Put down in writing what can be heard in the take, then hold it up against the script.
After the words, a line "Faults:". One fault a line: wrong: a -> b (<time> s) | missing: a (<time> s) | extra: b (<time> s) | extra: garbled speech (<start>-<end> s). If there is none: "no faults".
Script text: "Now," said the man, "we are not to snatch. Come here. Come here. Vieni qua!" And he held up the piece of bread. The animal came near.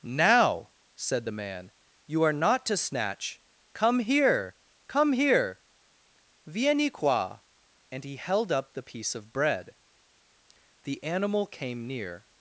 "Now," said the man, "you are not to snatch. Come here. Come here. Vieni qua!" And he held up the piece of bread. The animal came near.
Faults:
wrong: we -> you (2.1 s)